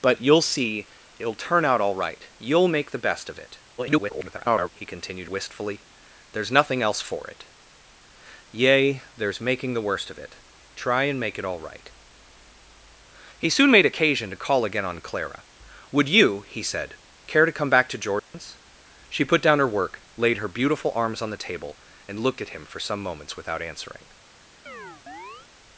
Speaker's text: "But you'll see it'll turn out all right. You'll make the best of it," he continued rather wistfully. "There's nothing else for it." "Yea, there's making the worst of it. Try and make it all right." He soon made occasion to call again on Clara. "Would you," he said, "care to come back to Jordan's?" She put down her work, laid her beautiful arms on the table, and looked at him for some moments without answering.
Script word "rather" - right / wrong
wrong